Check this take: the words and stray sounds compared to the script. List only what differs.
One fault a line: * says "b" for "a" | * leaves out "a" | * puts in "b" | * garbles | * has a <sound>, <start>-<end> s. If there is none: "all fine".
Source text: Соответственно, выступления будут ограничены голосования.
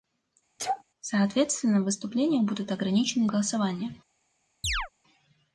* has a sneeze, 0.6-0.8 s
* has a chirp, 4.6-4.9 s